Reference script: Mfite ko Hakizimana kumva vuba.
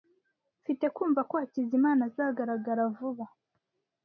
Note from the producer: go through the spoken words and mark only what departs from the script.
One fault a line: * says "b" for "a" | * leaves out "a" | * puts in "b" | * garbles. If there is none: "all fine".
* puts in "kumva"
* says "azagaragara" for "kumva"